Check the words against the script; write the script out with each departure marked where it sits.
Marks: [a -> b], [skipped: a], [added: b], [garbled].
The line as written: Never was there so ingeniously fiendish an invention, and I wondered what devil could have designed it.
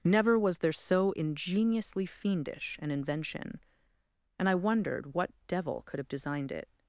Never was there so ingeniously fiendish an invention, and I wondered what devil could have designed it.